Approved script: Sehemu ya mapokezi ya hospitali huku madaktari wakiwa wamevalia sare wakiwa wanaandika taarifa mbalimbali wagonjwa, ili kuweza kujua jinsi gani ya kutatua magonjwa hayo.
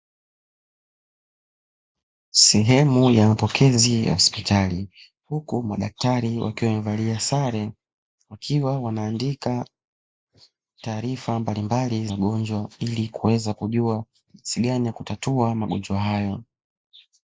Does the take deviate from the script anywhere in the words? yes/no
no